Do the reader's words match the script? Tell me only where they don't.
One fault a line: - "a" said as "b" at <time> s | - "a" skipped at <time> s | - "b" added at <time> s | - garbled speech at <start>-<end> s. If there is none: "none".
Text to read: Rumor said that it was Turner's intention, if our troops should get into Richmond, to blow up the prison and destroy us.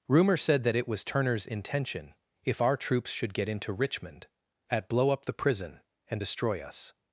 - "to" said as "at" at 4.7 s